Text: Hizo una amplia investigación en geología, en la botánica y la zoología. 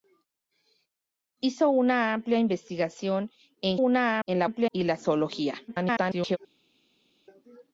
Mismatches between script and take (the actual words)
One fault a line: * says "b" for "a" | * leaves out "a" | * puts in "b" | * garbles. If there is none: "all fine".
* says "una" for "geología"
* says "amplia" for "botánica"
* garbles